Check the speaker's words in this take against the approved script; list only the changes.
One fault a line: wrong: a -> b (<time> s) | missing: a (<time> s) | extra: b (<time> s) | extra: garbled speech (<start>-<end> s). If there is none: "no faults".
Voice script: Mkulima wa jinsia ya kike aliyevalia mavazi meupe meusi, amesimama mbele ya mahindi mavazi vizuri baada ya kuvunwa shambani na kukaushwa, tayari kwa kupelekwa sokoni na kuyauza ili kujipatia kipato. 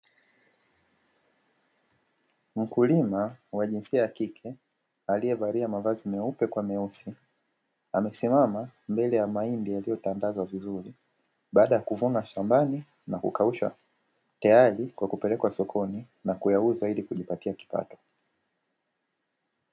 extra: kwa (6.5 s)
wrong: mavazi -> yaliyotandazwa (9.7 s)